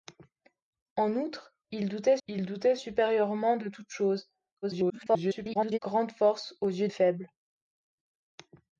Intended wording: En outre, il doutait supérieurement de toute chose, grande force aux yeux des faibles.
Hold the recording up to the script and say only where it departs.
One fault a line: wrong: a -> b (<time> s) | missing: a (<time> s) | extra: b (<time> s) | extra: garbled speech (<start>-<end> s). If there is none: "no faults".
extra: il doutait (2.2 s)
extra: garbled speech (4.6-5.8 s)
missing: des (6.9 s)